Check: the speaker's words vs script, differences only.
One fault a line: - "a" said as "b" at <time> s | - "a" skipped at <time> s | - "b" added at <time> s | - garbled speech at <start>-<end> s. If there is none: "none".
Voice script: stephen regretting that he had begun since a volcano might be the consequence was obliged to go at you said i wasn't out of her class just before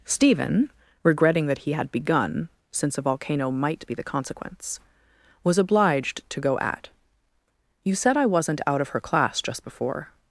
none